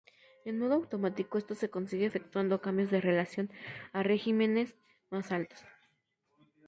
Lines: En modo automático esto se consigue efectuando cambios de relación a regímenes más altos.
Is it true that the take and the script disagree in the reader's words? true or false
false